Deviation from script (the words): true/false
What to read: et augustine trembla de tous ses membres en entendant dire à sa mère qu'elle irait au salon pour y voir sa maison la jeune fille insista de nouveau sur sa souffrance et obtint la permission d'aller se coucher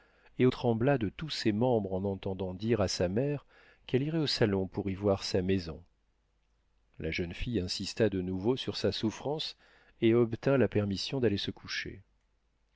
true